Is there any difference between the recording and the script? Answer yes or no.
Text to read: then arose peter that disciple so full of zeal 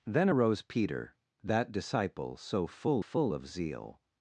yes